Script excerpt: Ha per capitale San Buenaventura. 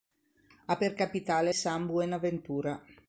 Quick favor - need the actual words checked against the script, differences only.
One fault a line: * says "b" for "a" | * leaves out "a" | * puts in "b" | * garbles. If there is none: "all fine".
all fine